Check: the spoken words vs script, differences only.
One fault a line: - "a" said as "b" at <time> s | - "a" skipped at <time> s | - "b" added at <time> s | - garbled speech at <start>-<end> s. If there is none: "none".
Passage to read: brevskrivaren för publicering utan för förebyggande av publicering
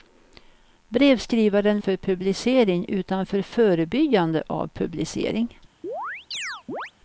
none